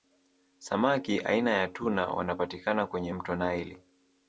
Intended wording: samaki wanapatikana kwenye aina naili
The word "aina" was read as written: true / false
false